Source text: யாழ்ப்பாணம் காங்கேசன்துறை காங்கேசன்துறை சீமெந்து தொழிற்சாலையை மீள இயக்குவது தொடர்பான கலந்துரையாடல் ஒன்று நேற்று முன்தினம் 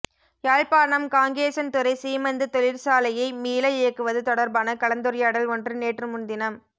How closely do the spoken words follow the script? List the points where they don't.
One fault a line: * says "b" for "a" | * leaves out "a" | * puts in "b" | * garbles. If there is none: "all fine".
* leaves out "காங்கேசன்துறை"